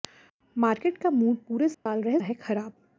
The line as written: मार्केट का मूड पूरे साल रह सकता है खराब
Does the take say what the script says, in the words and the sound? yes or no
no